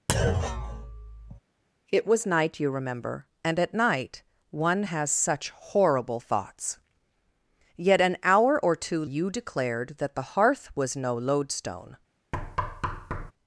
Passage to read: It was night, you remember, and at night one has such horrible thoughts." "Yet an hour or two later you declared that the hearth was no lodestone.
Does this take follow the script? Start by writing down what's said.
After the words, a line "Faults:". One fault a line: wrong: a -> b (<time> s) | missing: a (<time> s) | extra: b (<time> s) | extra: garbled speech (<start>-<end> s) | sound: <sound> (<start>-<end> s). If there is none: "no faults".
It was night, you remember, and at night one has such horrible thoughts." "Yet an hour or two you declared that the hearth was no lodestone.
Faults:
sound: thud (0.1-1.4 s)
missing: later (9.0 s)
sound: thud (12.3-13.3 s)